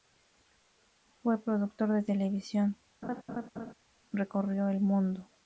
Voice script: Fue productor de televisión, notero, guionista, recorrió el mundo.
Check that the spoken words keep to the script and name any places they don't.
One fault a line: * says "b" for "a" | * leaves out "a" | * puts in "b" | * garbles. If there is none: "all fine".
* leaves out "notero guionista"